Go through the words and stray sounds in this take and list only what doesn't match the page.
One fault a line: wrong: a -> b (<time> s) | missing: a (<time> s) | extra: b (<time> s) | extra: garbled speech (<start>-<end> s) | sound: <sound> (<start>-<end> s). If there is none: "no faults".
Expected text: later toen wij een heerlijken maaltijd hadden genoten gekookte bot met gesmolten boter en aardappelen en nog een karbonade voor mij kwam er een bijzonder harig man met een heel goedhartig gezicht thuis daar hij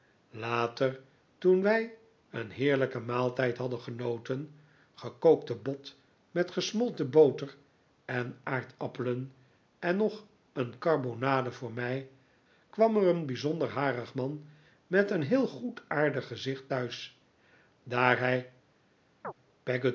sound: chirp (19.2-19.3 s)